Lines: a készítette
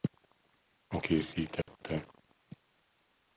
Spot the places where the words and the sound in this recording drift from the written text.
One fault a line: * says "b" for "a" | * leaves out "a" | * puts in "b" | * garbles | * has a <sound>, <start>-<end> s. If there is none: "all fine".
* has a dropout, 1.6-1.7 s